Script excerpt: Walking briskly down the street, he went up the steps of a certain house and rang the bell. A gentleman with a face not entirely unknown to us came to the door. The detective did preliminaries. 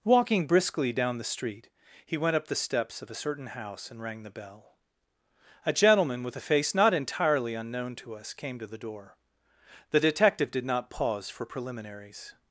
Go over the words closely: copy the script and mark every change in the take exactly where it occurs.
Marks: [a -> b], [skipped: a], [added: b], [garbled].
Walking briskly down the street, he went up the steps of a certain house and rang the bell. A gentleman with a face not entirely unknown to us came to the door. The detective did [added: not pause for] preliminaries.